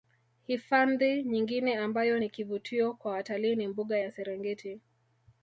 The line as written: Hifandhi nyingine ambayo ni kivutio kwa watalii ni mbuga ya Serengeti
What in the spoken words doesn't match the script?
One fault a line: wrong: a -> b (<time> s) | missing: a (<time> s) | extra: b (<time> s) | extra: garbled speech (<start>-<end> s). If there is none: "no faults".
no faults